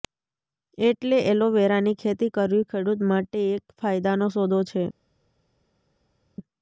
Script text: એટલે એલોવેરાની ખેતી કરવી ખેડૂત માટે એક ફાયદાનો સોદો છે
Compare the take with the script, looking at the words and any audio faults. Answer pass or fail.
pass